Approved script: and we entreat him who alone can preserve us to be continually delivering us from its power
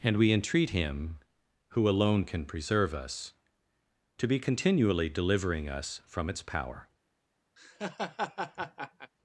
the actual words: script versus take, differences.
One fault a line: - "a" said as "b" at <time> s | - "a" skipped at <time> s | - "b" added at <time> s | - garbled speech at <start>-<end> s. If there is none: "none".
none